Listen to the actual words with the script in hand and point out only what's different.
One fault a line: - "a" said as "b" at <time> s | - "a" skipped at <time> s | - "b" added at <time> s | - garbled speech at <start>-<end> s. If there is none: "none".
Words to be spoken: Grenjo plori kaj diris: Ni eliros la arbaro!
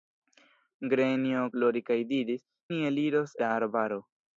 none